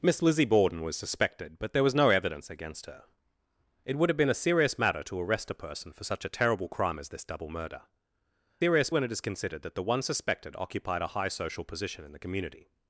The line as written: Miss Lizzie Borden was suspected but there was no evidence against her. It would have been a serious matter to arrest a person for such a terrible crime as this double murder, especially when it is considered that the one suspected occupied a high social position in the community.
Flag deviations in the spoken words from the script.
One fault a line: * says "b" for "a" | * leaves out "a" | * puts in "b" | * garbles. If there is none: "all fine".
* says "serious" for "especially"